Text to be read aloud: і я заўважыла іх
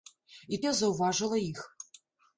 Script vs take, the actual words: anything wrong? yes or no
no